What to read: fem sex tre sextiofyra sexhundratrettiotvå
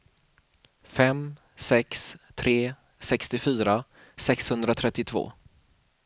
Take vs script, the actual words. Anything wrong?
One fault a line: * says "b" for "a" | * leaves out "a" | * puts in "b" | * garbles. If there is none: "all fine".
all fine